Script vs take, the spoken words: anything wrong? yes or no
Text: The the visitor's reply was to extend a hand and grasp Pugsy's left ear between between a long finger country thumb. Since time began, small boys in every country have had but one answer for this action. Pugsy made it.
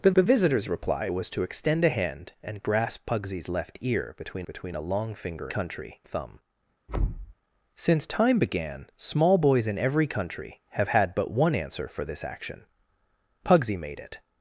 no